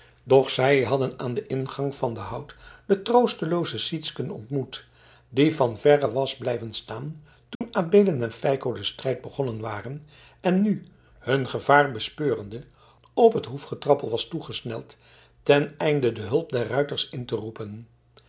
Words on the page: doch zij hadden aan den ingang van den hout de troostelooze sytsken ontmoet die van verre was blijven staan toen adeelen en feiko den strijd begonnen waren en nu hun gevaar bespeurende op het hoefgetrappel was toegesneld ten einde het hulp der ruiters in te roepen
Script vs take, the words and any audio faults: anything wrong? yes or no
yes